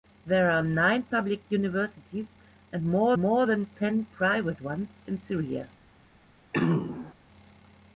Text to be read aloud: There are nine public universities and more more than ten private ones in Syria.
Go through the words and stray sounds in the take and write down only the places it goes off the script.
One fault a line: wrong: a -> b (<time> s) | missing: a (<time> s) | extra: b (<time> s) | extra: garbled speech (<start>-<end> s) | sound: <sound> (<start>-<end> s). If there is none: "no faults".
sound: throat clearing (6.5-7.1 s)